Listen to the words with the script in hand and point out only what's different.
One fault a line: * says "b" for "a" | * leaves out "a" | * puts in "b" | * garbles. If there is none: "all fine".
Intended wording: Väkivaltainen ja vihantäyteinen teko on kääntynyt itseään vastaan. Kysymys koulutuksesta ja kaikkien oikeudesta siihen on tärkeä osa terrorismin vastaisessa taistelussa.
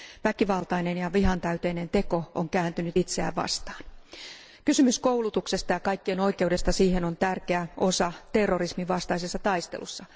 all fine